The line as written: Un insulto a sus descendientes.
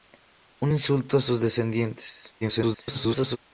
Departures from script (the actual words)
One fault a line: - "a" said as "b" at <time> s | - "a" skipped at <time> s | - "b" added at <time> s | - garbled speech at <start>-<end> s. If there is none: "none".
- garbled speech at 2.4-3.4 s